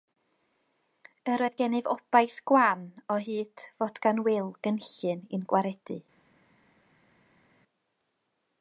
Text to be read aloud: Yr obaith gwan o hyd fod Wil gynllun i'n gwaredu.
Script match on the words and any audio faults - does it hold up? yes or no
no